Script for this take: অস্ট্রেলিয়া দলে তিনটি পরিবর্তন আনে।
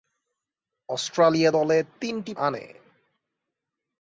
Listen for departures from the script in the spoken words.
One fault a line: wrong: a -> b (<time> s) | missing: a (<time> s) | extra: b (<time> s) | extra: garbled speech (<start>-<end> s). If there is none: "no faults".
missing: পরিবর্তন (2.3 s)